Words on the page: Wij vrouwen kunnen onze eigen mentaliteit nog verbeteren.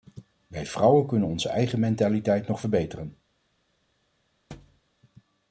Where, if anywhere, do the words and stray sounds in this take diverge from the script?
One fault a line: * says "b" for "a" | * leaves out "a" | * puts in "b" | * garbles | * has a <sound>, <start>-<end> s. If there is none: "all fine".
* has a thud, 4.5-4.8 s